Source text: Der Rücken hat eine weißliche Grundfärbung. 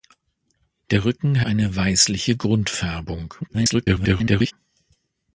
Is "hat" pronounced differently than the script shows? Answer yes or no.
yes